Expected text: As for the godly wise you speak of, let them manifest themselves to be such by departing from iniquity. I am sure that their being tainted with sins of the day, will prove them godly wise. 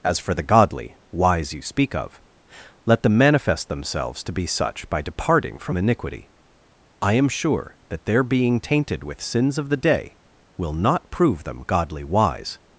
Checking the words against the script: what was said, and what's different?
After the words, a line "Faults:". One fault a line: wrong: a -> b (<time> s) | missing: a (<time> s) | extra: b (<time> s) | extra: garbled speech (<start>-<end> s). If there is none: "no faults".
As for the godly wise you speak of, let them manifest themselves to be such by departing from iniquity. I am sure that their being tainted with sins of the day, will not prove them godly wise.
Faults:
extra: not (10.7 s)